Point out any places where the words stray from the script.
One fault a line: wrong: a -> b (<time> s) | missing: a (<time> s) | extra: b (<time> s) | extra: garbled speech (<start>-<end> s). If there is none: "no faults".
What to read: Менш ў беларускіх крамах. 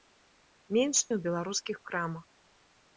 no faults